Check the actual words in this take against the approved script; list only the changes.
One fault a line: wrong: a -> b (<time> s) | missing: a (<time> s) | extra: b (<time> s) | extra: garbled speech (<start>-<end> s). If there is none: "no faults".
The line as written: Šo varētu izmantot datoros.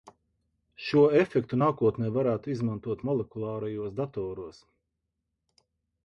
extra: efektu nākotnē (1.2 s)
extra: molekulārajos (3.1 s)